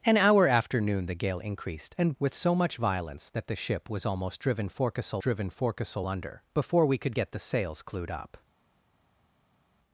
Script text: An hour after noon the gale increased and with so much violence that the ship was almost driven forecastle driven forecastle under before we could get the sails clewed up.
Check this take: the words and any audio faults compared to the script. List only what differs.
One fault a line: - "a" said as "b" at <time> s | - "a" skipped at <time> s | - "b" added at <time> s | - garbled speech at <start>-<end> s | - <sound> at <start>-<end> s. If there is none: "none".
none